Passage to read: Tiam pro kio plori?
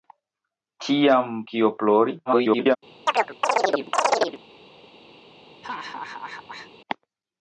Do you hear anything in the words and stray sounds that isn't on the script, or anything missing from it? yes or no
yes